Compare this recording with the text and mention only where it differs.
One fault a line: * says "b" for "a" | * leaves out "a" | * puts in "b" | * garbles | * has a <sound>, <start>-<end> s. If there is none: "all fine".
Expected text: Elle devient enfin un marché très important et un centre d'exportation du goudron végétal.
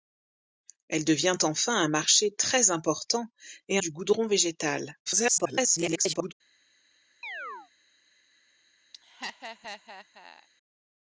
* leaves out "un centre d'exportation"
* garbles
* has a chirp, 7.2-7.7 s
* has a laugh, 8.9-10.5 s